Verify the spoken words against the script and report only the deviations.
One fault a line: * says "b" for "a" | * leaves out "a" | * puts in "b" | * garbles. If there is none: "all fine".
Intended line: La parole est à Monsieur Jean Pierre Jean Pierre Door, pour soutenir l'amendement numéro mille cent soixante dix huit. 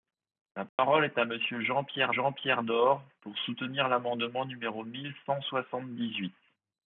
all fine